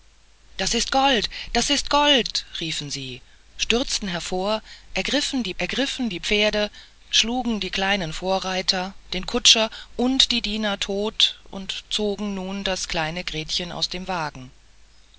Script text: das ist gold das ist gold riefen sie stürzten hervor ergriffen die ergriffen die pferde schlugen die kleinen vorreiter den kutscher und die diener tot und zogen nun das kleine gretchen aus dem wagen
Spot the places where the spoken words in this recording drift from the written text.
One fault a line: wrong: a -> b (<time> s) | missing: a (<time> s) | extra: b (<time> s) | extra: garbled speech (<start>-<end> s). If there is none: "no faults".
no faults